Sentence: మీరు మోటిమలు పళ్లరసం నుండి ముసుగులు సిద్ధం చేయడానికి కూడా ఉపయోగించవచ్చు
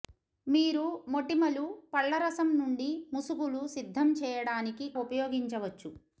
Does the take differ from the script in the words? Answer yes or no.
yes